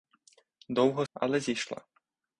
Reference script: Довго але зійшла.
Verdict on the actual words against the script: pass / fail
pass